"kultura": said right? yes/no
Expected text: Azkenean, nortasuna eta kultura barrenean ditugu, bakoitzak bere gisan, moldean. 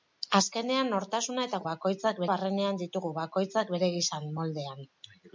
no